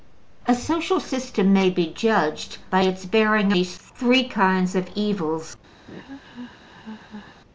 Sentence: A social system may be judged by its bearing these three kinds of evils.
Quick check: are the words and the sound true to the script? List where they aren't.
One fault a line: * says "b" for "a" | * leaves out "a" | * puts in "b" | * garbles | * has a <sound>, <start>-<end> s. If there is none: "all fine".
* has a laugh, 5.9-7.4 s